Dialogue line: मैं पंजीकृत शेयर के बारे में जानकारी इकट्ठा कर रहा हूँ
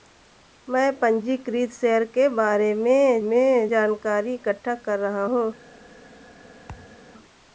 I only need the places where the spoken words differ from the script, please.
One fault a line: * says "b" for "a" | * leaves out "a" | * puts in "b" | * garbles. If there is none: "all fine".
* puts in "में"